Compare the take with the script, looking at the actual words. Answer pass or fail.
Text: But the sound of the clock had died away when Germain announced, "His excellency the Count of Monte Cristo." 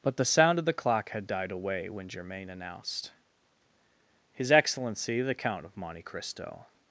pass